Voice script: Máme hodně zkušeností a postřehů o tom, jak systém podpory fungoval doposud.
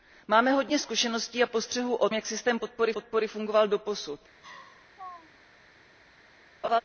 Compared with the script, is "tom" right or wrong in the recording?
wrong